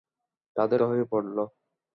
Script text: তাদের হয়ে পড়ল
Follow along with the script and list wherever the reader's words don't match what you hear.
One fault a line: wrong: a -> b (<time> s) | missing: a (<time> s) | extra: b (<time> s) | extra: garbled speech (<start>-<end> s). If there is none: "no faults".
no faults